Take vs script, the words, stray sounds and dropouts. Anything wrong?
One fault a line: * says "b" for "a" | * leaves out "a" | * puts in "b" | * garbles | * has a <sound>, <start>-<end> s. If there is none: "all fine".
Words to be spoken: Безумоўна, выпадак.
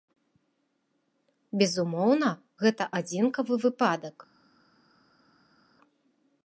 * puts in "гэта адзінкавы"